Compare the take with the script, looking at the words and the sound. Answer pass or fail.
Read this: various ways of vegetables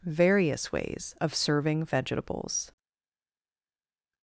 fail